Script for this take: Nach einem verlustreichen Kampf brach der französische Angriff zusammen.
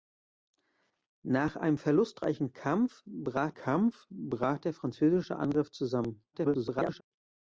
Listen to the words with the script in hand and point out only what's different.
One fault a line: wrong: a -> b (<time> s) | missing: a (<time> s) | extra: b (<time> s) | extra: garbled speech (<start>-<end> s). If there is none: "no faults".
extra: Kampf brach (3.5 s)
extra: garbled speech (6.3-7.0 s)